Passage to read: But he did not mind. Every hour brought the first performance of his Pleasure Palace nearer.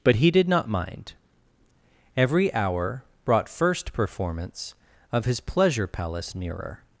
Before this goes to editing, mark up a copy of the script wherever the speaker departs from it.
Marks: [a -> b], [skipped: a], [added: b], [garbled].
But he did not mind. Every hour brought [skipped: the] first performance of his Pleasure Palace nearer.